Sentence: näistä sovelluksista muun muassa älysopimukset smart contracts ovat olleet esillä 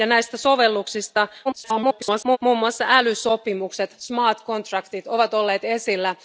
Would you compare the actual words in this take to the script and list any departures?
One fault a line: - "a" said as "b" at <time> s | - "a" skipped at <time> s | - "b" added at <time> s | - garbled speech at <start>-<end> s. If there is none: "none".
- garbled speech at 1.4-2.4 s